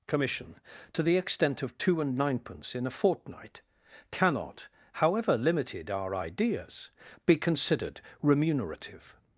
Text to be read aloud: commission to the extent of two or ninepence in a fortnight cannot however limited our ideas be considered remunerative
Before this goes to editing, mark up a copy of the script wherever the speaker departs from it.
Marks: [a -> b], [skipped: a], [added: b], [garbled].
commission to the extent of two [or -> and] ninepence in a fortnight cannot however limited our ideas be considered remunerative